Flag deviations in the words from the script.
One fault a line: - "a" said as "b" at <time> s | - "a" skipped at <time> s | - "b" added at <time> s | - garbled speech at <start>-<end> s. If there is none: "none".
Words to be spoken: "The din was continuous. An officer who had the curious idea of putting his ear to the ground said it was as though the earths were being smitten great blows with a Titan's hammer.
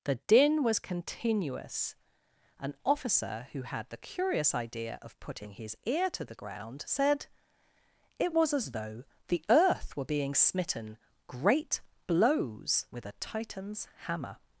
- "earths" said as "earth" at 9.5 s